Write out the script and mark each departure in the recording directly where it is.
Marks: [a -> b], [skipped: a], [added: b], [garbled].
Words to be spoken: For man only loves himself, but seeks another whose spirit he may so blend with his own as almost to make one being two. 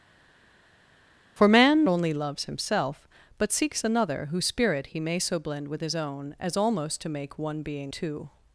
For man only loves himself, but seeks another whose spirit he may so blend with his own as almost to make one being two.